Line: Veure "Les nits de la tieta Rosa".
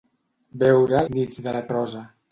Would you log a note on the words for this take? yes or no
yes